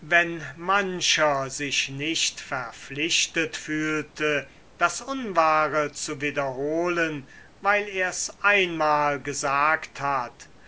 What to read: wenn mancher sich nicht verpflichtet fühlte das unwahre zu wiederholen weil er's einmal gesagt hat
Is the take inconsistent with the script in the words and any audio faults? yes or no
no